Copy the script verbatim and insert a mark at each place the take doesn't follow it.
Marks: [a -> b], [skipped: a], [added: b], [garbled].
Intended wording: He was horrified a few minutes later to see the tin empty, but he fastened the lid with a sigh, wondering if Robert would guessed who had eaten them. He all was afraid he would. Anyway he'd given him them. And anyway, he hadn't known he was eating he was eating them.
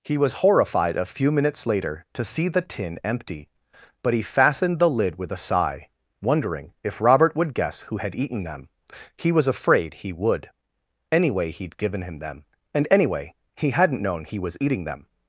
He was horrified a few minutes later to see the tin empty, but he fastened the lid with a sigh, wondering if Robert would [guessed -> guess] who had eaten them. He [skipped: all] was afraid he would. Anyway he'd given him them. And anyway, he hadn't known he was eating [skipped: he was eating] them.